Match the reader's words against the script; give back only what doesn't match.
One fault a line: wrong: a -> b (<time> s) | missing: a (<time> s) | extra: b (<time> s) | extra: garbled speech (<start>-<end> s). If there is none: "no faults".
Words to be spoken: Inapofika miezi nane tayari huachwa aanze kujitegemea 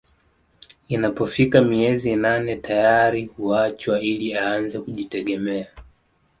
extra: ili (4.0 s)